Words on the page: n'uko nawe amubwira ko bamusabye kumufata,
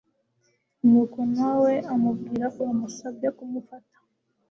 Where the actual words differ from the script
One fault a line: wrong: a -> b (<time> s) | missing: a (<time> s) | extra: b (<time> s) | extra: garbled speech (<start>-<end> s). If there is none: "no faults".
missing: ko (2.5 s)